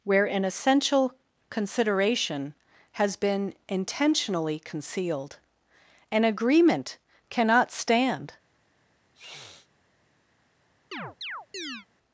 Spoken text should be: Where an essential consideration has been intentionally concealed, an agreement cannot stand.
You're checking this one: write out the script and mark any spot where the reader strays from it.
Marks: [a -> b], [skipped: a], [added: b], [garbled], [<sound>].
Where an essential consideration has been intentionally concealed, an agreement cannot stand. [sniff] [chirp]